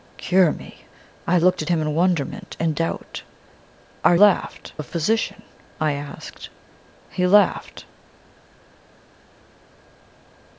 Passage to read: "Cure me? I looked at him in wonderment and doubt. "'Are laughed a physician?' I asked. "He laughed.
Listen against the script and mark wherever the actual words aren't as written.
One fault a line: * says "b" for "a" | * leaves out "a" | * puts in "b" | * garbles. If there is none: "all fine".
all fine